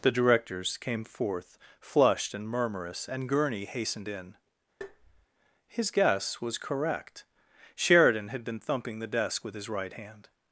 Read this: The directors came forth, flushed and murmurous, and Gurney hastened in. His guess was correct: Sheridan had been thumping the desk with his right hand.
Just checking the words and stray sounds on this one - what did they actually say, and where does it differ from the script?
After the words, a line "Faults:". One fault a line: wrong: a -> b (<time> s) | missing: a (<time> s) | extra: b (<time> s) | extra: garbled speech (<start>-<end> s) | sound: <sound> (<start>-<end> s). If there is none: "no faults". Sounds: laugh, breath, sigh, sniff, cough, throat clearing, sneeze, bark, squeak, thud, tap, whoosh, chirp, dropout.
The directors came forth, flushed and murmurous, and Gurney hastened in. His guess was correct: Sheridan had been thumping the desk with his right hand.
Faults:
sound: tap (4.8-5.3 s)